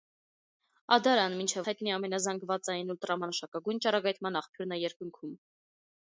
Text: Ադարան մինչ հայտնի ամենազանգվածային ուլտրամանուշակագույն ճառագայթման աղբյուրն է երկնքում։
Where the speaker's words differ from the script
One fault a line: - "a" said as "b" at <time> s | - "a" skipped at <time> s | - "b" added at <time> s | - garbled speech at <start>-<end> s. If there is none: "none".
none